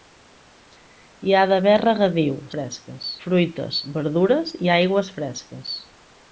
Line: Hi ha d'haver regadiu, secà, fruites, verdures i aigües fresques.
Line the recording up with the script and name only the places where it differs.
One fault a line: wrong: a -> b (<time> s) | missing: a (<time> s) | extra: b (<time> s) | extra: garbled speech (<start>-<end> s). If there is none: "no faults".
wrong: secà -> fresques (2.6 s)